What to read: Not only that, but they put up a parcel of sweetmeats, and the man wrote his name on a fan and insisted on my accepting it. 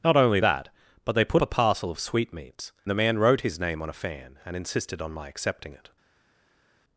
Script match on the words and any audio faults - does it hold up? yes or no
no